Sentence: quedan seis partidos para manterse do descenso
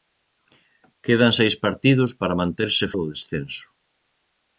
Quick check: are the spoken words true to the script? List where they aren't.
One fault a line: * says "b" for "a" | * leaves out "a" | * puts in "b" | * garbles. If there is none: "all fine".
all fine